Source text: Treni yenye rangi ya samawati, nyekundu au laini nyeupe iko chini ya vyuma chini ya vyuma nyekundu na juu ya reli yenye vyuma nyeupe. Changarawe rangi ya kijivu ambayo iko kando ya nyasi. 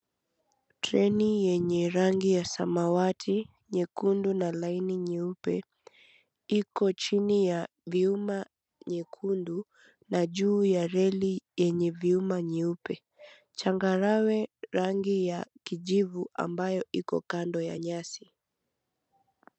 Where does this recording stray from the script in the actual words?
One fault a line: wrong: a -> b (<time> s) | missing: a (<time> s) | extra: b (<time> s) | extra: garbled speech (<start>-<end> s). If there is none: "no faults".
wrong: au -> na (4.3 s)
missing: chini ya vyuma (8.4 s)